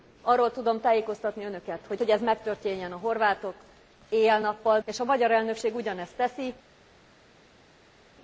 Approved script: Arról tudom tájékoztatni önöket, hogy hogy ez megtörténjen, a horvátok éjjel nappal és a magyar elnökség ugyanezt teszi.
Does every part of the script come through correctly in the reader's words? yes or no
yes